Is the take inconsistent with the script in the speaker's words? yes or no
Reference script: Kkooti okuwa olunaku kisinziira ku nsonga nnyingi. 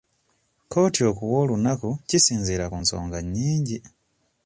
no